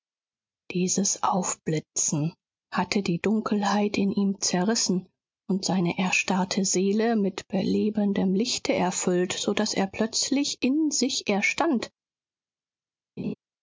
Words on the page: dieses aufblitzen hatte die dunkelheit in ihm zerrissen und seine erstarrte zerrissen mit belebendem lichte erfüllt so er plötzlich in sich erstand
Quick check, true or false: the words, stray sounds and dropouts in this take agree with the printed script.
false